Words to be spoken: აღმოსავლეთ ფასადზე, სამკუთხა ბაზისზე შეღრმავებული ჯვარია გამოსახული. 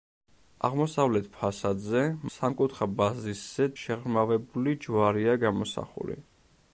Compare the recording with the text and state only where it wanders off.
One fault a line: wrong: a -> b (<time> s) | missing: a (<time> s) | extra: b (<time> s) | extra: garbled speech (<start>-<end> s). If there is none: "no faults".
no faults